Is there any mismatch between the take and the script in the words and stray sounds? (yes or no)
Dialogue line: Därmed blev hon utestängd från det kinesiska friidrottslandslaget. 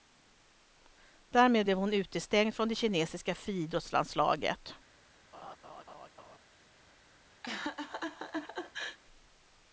yes